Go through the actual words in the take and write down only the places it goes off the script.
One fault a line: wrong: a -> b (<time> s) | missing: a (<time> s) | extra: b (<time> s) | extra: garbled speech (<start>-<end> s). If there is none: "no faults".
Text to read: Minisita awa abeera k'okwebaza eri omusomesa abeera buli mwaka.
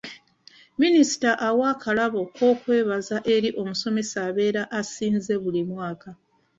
wrong: abeera -> akalabo (1.7 s)
extra: asinze (4.8 s)